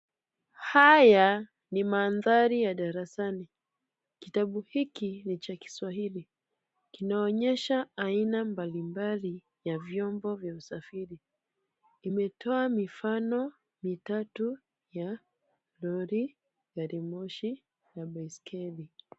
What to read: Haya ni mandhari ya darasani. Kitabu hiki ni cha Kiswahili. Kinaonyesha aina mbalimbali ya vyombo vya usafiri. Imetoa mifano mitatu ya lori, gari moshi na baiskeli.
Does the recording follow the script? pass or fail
pass